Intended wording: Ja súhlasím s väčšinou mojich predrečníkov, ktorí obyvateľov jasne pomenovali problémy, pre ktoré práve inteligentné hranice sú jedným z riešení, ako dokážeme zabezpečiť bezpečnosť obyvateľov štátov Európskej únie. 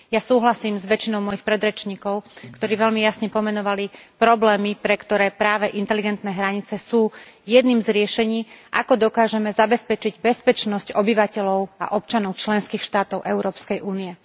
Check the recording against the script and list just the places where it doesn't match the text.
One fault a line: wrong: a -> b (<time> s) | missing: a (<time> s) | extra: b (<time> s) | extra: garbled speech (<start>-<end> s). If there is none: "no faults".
wrong: obyvateľov -> veľmi (2.8 s)
extra: a občanov členských (11.8 s)